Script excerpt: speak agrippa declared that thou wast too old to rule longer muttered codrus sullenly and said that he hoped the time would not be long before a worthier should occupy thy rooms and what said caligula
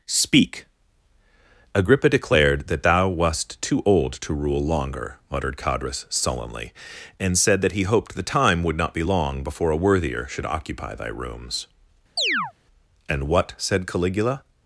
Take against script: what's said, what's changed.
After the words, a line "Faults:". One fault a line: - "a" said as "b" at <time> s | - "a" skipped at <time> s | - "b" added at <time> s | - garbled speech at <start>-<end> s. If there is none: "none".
speak agrippa declared that thou wast too old to rule longer muttered codrus sullenly and said that he hoped the time would not be long before a worthier should occupy thy rooms and what said caligula
Faults:
none